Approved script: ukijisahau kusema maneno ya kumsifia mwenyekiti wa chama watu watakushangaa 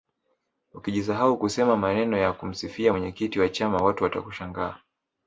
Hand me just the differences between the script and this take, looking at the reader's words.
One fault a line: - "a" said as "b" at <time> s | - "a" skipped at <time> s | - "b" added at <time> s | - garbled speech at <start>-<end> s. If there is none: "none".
none